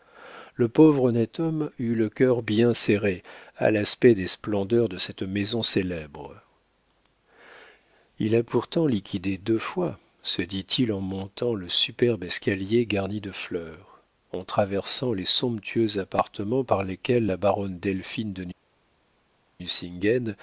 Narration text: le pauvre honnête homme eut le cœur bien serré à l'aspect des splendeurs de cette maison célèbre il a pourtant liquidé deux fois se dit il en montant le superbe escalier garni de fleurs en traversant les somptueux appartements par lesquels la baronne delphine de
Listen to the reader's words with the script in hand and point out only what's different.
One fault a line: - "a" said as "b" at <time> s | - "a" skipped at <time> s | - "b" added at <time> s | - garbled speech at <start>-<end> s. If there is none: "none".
none